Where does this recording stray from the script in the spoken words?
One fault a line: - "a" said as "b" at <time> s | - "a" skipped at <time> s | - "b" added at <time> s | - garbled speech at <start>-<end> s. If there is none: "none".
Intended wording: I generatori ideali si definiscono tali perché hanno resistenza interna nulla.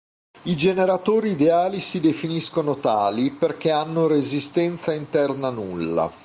none